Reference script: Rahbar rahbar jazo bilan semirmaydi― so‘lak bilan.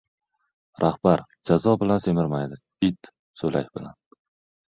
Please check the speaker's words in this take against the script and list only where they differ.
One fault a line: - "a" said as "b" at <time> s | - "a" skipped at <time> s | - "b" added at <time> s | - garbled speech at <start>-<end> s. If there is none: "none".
- "rahbar" skipped at 1.2 s
- "it" added at 2.9 s